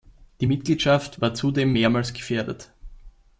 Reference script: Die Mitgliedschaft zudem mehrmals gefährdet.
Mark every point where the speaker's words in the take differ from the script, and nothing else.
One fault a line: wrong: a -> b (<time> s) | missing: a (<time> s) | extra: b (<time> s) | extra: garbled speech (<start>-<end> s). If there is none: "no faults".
extra: war (1.2 s)